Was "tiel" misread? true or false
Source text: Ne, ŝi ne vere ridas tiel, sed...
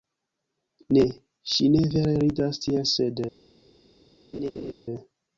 false